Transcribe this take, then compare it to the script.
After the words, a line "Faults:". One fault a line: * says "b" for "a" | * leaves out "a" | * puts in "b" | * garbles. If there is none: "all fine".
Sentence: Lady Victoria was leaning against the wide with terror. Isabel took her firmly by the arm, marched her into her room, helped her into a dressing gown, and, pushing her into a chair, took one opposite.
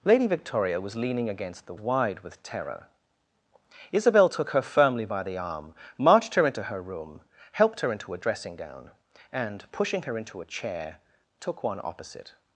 Lady Victoria was leaning against the wide with terror. Isabel took her firmly by the arm, marched her into her room, helped her into a dressing gown, and, pushing her into a chair, took one opposite.
Faults:
all fine